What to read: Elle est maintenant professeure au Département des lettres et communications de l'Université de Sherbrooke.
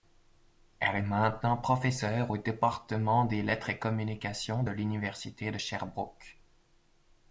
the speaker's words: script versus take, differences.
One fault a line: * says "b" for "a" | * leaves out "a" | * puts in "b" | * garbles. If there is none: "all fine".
all fine